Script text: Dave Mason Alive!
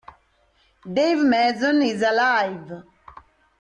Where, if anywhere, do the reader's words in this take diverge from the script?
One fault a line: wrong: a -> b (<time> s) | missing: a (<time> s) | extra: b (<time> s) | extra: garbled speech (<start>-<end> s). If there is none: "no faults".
extra: Is (1.8 s)